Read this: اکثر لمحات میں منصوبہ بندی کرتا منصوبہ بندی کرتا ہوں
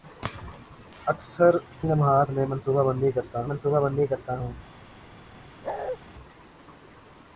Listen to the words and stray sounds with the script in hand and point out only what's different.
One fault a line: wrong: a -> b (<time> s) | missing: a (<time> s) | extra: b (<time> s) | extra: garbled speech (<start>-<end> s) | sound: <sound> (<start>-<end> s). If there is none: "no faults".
sound: bark (5.6-6.0 s)